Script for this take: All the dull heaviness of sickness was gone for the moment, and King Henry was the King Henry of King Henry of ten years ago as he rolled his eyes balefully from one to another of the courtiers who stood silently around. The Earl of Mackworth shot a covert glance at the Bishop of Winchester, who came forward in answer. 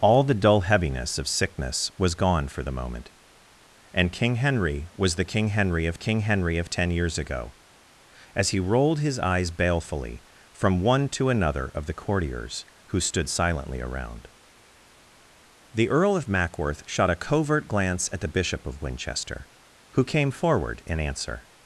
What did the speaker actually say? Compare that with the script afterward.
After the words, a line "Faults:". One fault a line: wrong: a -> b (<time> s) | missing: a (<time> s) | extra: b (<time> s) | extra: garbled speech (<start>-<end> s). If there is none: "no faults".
All the dull heaviness of sickness was gone for the moment, and King Henry was the King Henry of King Henry of ten years ago as he rolled his eyes balefully from one to another of the courtiers who stood silently around. The Earl of Mackworth shot a covert glance at the Bishop of Winchester, who came forward in answer.
Faults:
no faults